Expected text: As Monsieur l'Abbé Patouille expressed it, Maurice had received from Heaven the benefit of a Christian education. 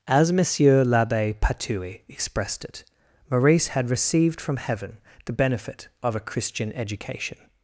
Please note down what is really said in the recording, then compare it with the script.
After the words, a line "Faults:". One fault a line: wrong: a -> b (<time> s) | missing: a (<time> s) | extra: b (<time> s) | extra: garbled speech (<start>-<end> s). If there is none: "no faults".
As Monsieur l'Abbé Patouille expressed it, Maurice had received from Heaven the benefit of a Christian education.
Faults:
no faults